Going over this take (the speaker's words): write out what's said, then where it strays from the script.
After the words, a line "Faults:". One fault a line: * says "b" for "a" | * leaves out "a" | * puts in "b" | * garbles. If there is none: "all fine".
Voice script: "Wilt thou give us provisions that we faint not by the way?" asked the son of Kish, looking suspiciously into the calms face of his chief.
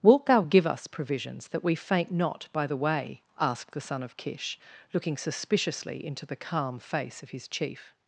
"Wilt thou give us provisions that we faint not by the way?" asked the son of Kish, looking suspiciously into the calm face of his chief.
Faults:
* says "calm" for "calms"